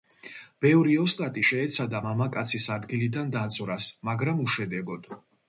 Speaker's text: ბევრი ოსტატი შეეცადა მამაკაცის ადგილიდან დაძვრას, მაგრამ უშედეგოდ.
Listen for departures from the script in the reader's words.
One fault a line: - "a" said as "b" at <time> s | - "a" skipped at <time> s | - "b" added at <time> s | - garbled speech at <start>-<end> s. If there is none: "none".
none